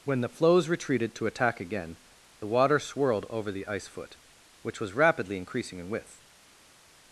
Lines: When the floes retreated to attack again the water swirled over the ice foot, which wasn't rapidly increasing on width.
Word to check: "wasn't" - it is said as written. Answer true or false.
false